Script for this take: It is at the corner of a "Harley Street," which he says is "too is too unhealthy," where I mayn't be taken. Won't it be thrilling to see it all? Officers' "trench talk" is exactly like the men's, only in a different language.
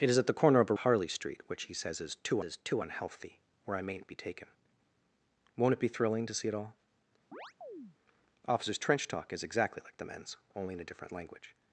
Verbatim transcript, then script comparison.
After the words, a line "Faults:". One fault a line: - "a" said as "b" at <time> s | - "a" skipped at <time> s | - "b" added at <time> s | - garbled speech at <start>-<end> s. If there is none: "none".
It is at the corner of a "Harley Street," which he says is "too is too unhealthy," where I mayn't be taken. Won't it be thrilling to see it all? Officers' "trench talk" is exactly like the men's, only in a different language.
Faults:
none